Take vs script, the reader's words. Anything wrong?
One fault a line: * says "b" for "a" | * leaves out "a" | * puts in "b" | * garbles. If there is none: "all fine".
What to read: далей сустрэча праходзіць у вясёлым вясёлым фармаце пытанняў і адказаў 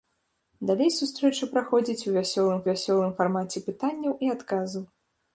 all fine